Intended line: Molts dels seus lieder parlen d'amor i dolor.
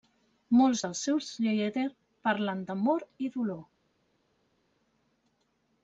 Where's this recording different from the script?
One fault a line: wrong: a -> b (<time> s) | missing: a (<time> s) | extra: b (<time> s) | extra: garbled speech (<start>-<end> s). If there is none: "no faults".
no faults